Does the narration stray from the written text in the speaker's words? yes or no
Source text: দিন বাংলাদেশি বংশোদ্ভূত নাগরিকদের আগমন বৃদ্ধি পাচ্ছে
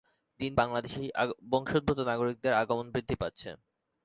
no